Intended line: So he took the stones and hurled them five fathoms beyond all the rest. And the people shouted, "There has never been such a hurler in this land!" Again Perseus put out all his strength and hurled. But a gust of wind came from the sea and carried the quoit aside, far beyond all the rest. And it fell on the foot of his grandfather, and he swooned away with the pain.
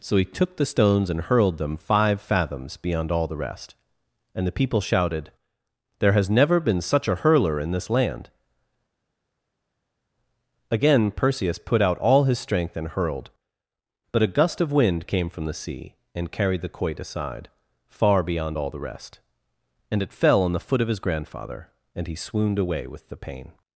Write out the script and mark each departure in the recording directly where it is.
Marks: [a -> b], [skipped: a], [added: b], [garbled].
So he took the stones and hurled them five fathoms beyond all the rest. And the people shouted, "There has never been such a hurler in this land!" Again Perseus put out all his strength and hurled. But a gust of wind came from the sea and carried the quoit aside, far beyond all the rest. And it fell on the foot of his grandfather, and he swooned away with the pain.